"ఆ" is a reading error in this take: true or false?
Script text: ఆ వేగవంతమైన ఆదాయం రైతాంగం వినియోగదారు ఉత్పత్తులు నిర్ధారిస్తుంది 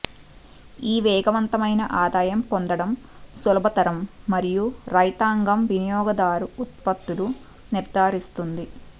true